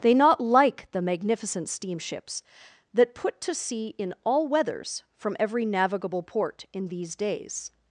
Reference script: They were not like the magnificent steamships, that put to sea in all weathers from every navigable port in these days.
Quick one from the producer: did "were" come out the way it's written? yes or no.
no